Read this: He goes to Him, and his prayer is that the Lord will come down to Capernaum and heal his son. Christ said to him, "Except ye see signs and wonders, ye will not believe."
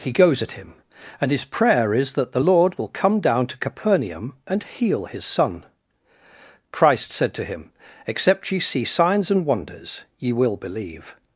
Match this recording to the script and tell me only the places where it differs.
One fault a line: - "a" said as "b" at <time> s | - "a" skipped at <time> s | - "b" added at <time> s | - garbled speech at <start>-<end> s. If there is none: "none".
- "to" said as "at" at 0.4 s
- "not" skipped at 10.6 s